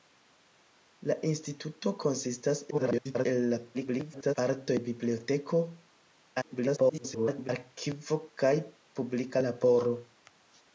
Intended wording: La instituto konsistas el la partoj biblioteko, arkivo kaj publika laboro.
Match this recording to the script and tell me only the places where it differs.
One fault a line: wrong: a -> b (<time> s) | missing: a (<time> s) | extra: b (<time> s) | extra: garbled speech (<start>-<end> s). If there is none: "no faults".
extra: garbled speech (2.7-3.3 s)
extra: garbled speech (3.7-4.3 s)
extra: garbled speech (6.4-7.5 s)